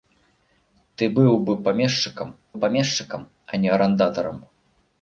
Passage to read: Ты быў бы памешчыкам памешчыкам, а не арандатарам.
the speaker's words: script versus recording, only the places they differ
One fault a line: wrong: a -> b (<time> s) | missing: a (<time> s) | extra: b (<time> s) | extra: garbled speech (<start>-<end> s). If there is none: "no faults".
no faults